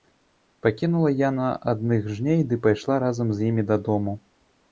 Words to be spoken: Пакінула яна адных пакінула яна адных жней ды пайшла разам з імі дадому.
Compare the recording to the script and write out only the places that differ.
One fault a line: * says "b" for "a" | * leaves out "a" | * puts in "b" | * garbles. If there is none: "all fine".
* leaves out "пакінула яна адных"